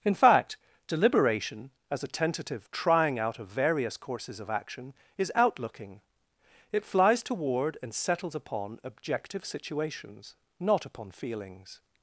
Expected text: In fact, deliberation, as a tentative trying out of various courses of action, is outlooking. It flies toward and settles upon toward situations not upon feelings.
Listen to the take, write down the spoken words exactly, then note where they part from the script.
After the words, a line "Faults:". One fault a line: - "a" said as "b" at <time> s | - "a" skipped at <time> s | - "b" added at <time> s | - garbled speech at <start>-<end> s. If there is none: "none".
In fact, deliberation, as a tentative trying out of various courses of action, is outlooking. It flies toward and settles upon objective situations not upon feelings.
Faults:
- "toward" said as "objective" at 8.8 s